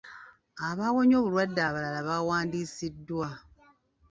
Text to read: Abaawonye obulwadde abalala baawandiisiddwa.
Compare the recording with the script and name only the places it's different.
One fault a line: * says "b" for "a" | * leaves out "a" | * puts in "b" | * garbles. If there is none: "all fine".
all fine